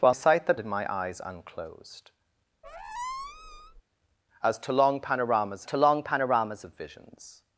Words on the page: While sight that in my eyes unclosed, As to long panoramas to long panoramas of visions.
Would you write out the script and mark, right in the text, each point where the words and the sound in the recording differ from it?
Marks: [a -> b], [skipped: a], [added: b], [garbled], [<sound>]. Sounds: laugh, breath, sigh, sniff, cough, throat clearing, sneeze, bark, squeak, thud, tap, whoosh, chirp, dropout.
While sight that in my eyes unclosed, [squeak] As to long panoramas to long panoramas of visions.